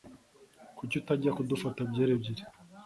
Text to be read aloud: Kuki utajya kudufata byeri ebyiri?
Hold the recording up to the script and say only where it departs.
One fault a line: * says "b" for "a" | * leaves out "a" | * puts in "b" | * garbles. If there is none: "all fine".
all fine